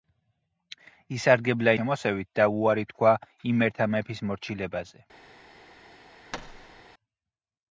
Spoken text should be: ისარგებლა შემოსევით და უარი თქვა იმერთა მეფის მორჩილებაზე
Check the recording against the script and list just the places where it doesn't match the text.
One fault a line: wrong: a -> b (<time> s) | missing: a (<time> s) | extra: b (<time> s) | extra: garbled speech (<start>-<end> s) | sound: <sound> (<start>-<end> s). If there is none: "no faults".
sound: thud (6.3-6.8 s)